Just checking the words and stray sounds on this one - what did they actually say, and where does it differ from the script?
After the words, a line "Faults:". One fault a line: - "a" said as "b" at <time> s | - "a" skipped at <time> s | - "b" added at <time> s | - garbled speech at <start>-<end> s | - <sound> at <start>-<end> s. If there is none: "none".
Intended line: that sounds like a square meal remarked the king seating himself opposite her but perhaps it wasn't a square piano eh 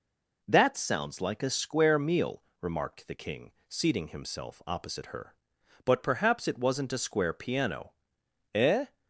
that sounds like a square meal remarked the king seating himself opposite her but perhaps it wasn't a square piano eh
Faults:
none